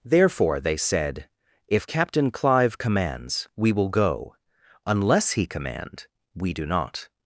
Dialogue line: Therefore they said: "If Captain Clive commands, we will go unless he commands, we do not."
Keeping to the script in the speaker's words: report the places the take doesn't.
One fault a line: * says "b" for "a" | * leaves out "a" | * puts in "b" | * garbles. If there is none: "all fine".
* says "command" for "commands"